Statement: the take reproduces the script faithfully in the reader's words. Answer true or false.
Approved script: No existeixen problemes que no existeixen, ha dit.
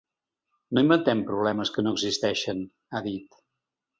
false